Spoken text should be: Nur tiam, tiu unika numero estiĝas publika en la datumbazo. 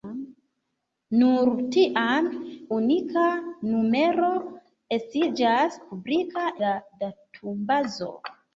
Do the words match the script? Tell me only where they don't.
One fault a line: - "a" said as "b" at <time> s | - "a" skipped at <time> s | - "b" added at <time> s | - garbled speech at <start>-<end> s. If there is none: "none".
- "tiu" skipped at 2.3 s
- "en" skipped at 6.5 s